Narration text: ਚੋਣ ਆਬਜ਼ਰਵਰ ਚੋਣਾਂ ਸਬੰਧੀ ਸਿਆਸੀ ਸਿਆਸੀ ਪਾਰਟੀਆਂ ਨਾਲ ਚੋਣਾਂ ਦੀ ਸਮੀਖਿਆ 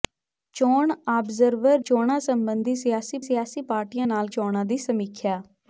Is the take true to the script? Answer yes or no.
yes